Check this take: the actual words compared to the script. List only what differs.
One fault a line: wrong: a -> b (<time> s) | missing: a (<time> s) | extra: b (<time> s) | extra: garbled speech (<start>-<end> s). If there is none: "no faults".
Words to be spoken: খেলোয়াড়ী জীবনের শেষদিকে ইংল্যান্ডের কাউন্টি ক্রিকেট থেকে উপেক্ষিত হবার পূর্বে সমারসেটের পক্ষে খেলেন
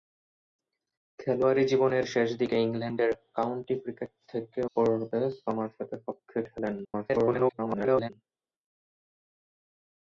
missing: উপেক্ষিত হবার (4.6 s)
extra: garbled speech (6.8-8.1 s)